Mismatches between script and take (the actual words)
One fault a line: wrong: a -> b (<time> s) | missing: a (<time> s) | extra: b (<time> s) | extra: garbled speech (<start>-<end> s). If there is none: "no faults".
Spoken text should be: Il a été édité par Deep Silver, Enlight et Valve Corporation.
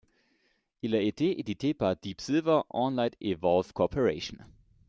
no faults